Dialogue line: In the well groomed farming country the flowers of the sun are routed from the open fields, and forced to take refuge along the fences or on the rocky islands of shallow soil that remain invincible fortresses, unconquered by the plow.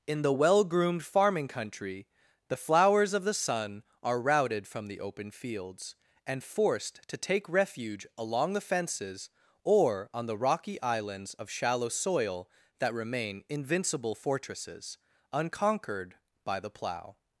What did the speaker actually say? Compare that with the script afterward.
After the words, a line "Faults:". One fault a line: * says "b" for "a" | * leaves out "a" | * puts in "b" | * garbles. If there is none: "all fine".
In the well groomed farming country the flowers of the sun are routed from the open fields, and forced to take refuge along the fences or on the rocky islands of shallow soil that remain invincible fortresses, unconquered by the plow.
Faults:
all fine